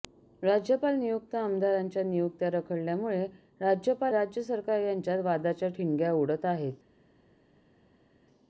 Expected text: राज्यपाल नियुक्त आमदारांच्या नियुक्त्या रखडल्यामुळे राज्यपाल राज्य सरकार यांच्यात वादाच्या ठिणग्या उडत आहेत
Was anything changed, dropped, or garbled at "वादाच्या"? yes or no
no